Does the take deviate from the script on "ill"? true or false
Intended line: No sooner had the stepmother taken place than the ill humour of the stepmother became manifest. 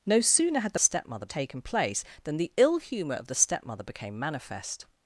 false